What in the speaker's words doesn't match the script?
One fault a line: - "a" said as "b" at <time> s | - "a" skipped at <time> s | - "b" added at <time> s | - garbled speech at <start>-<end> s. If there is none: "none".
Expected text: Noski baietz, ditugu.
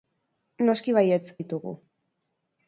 none